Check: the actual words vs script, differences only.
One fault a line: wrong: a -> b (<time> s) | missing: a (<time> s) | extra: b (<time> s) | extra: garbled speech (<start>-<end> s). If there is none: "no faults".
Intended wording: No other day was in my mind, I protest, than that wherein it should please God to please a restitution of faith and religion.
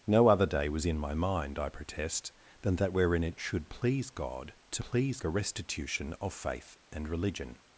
no faults